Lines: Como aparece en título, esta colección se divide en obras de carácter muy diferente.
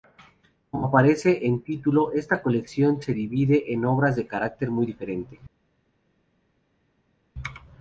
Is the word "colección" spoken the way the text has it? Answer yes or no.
yes